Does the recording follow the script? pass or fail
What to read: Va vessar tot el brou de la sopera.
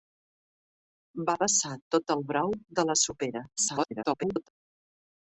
fail